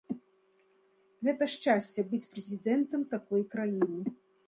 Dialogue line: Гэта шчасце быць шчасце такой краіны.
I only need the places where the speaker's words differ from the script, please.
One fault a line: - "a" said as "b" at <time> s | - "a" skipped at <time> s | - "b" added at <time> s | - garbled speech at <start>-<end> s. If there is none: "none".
- "шчасце" said as "прэзідэнтам" at 2.4 s